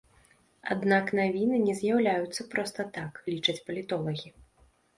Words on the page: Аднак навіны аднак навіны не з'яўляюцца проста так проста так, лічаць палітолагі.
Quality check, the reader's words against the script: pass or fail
fail